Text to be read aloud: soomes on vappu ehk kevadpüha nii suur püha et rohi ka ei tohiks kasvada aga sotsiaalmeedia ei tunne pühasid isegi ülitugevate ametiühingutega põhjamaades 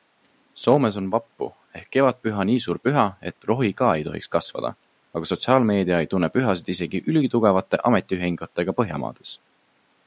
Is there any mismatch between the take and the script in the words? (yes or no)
no